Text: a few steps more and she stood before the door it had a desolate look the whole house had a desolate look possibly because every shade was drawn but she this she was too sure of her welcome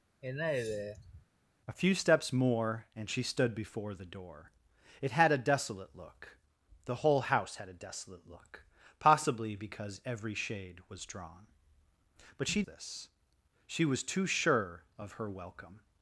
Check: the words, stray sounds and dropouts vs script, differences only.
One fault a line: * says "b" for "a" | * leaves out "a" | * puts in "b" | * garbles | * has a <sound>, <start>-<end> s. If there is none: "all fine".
* has a sigh, 0.2-1.3 s